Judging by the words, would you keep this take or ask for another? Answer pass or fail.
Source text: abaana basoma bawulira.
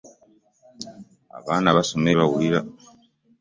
pass